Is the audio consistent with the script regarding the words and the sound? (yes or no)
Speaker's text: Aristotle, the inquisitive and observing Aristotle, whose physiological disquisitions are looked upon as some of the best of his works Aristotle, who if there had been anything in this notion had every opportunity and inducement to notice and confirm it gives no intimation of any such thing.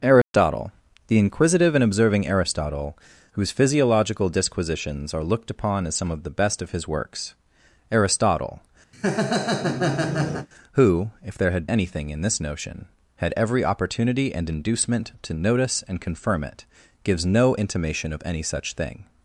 no